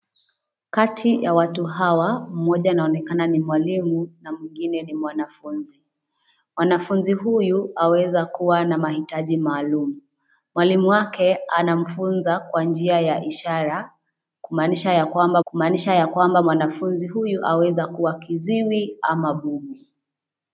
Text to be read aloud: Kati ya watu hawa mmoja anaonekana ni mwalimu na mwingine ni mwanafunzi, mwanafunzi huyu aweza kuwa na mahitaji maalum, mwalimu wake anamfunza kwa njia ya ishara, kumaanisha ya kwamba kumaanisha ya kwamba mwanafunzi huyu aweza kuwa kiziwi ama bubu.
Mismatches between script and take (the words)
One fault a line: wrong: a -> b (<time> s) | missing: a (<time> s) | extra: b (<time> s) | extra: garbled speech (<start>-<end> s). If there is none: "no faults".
no faults